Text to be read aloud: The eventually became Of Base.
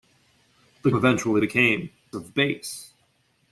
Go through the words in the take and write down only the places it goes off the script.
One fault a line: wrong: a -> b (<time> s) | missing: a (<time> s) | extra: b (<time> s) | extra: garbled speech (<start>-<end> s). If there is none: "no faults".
no faults